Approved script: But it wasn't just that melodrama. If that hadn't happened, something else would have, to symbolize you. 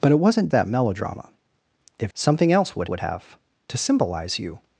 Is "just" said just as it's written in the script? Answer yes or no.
no